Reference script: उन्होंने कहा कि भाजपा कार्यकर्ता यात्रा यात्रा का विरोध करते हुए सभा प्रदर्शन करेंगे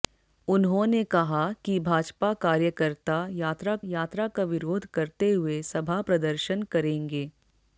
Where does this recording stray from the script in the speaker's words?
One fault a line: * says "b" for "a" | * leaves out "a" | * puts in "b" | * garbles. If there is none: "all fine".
all fine